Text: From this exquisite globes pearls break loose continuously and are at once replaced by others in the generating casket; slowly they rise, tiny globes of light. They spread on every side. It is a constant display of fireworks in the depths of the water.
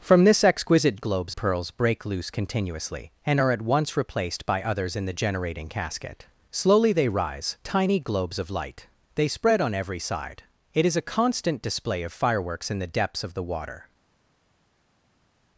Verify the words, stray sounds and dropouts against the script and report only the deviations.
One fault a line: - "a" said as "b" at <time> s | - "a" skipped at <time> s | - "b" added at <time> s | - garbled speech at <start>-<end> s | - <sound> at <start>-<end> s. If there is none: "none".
none